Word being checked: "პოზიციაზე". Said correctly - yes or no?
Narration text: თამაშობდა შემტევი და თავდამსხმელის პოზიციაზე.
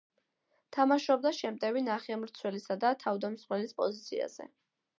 yes